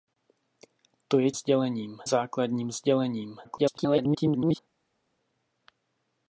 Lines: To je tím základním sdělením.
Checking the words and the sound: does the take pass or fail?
fail